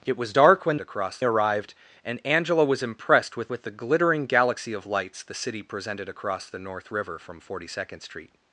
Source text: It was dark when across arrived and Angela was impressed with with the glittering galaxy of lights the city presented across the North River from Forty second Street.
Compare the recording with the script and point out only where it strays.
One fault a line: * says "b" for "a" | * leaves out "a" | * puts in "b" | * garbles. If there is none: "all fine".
all fine